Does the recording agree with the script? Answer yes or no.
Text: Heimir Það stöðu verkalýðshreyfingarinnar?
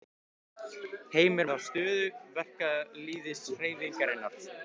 yes